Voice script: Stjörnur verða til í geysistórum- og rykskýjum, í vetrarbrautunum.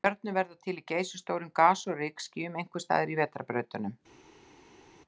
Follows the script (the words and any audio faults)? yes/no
no